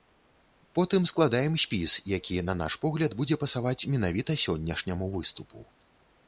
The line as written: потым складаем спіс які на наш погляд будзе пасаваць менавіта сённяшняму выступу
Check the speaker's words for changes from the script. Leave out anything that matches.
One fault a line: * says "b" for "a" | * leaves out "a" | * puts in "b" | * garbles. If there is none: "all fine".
all fine